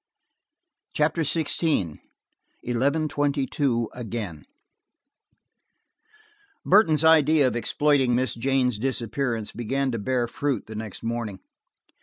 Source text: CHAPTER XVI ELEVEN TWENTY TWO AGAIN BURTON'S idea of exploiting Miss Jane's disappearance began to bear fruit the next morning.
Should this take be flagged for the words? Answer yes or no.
no